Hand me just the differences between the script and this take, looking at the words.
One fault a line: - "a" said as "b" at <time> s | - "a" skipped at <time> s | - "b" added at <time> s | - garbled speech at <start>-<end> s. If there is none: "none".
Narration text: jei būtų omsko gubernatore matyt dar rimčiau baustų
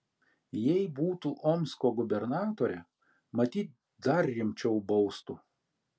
none